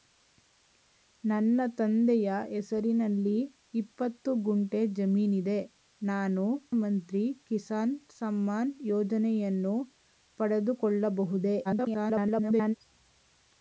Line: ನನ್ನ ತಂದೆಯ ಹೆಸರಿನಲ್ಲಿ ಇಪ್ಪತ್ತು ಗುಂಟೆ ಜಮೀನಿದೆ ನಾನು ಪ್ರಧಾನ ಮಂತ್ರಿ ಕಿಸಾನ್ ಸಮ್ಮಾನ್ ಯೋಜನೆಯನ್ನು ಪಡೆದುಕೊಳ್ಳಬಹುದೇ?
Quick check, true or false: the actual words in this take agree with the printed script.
false